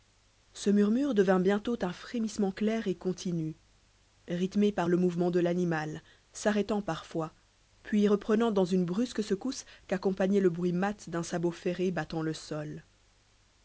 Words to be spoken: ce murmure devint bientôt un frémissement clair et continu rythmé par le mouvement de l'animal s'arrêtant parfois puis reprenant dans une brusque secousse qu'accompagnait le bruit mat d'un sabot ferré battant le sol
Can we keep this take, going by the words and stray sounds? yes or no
yes